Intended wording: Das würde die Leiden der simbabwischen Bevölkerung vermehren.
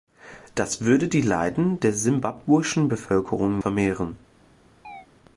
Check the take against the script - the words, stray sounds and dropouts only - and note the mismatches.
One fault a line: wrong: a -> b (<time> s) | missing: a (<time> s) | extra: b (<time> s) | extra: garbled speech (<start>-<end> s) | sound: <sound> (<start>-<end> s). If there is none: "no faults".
sound: chirp (4.8-5.1 s)